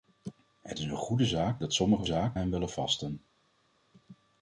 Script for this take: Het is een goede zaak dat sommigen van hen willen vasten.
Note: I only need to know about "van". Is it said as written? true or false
false